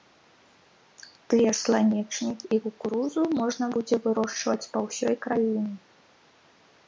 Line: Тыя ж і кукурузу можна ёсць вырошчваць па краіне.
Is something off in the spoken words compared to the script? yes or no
yes